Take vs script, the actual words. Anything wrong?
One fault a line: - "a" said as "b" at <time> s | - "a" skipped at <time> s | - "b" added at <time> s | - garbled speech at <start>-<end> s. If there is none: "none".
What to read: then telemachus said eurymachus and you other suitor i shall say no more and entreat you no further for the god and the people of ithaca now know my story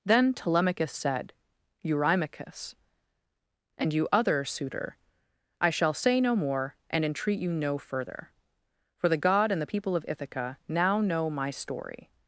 none